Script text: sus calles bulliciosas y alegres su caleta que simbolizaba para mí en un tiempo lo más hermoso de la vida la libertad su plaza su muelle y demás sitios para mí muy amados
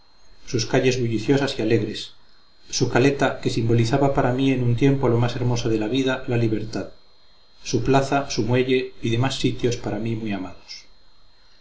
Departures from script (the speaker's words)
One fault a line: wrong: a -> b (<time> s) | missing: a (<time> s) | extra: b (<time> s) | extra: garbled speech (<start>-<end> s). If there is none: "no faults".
no faults